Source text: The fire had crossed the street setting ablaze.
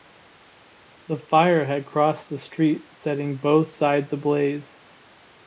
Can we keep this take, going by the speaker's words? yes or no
no